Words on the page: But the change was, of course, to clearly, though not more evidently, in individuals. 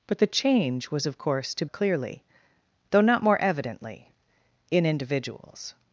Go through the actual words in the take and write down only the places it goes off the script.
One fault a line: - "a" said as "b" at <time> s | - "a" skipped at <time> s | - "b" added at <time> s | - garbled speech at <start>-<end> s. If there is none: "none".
none